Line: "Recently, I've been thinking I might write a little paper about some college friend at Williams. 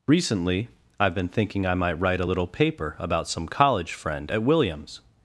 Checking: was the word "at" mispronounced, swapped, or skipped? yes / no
no